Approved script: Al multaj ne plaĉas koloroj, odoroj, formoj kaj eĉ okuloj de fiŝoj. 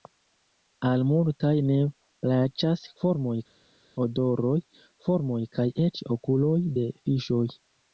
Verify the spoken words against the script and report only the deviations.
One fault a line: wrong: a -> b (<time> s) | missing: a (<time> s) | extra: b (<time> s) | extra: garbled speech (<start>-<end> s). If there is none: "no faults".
wrong: koloroj -> formoj (3.0 s)